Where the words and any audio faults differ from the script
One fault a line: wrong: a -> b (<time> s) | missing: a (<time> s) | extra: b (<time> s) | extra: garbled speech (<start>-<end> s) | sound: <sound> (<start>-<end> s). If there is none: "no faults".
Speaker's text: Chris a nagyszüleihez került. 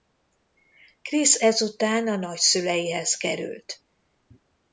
extra: ezután (1.3 s)